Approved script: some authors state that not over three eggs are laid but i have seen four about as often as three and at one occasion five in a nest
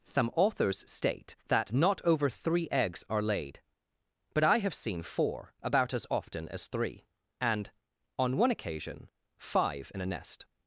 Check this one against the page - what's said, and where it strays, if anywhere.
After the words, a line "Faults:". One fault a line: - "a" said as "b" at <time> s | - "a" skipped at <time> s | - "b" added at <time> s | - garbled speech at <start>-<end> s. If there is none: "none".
some authors state that not over three eggs are laid but i have seen four about as often as three and on one occasion five in a nest
Faults:
- "at" said as "on" at 8.2 s